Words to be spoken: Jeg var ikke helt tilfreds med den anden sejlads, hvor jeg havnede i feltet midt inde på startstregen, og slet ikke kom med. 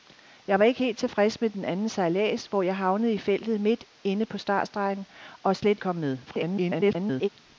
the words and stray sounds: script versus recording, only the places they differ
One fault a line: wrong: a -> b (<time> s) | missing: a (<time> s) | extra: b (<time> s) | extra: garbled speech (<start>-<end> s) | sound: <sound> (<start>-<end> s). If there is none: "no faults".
missing: ikke (5.8 s)
extra: garbled speech (6.3-7.3 s)